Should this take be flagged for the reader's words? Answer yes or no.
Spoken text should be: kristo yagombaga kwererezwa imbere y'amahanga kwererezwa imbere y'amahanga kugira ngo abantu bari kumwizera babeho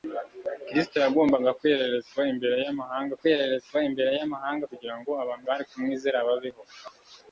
no